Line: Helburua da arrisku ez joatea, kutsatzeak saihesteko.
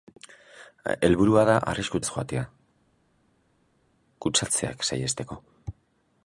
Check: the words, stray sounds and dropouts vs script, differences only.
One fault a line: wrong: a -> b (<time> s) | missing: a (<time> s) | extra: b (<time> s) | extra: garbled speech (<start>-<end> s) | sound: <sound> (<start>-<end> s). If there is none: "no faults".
no faults